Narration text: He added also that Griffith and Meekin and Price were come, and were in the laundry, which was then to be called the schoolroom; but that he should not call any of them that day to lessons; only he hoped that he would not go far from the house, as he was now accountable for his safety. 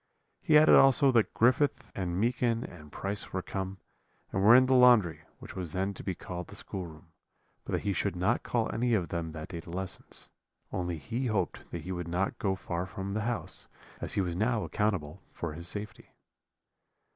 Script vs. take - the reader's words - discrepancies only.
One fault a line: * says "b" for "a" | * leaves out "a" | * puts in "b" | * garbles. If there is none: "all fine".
all fine